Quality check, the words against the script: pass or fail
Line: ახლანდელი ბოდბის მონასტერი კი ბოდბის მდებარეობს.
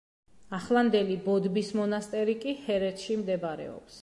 fail